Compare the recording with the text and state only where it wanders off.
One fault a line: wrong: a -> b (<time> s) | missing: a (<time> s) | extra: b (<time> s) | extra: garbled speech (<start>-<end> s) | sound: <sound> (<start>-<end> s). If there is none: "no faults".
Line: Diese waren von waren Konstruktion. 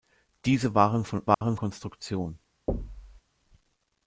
sound: dropout (1.3-1.4 s)
sound: thud (2.7-3.2 s)